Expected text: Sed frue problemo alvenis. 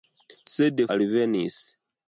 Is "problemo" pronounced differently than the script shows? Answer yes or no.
yes